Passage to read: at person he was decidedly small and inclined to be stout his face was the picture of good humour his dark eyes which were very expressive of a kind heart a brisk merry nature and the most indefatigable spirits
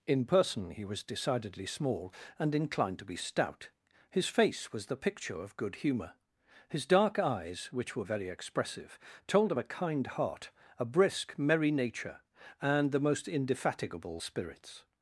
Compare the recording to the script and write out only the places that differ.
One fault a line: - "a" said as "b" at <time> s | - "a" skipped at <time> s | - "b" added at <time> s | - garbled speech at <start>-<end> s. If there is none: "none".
- "at" said as "in" at 0.1 s
- "told" added at 9.3 s